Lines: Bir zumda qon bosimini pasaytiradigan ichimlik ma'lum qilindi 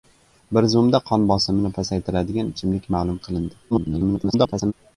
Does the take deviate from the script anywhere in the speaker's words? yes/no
yes